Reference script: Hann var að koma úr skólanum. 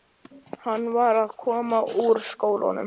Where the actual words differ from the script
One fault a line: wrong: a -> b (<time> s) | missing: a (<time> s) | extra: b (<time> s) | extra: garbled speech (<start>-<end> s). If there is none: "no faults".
no faults